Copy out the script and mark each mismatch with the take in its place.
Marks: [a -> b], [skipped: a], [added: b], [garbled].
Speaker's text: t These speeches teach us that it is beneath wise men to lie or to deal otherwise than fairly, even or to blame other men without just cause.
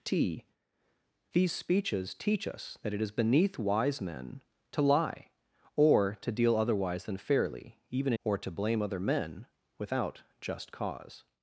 t These speeches teach us that it is beneath wise men to lie or to deal otherwise than fairly, even or to blame other men without just cause.